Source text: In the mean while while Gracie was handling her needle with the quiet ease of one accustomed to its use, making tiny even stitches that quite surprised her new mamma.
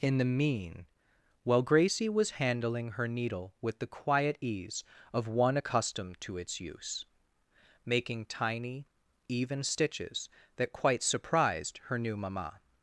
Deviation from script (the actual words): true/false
true